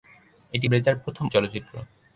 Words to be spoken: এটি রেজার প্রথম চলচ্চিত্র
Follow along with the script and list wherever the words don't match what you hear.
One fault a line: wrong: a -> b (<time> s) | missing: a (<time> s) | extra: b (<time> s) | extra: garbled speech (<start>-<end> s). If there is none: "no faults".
no faults